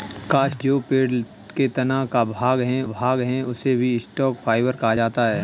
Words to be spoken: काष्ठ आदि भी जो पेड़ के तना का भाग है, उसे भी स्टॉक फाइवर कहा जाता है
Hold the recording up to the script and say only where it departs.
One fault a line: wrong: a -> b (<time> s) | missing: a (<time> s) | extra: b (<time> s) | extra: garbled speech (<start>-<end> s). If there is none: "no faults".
missing: आदि भी (0.6 s)
extra: भाग है (2.9 s)